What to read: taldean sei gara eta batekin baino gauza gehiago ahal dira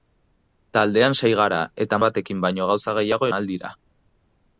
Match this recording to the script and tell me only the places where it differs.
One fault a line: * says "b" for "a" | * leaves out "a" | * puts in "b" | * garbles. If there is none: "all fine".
all fine